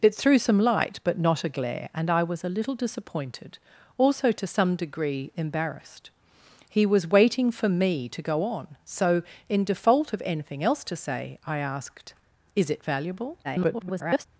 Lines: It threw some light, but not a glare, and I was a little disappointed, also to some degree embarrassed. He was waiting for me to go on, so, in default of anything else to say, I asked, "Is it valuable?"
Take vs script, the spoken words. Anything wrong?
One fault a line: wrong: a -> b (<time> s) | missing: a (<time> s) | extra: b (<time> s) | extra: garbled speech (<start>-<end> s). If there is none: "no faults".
extra: garbled speech (13.4-14.3 s)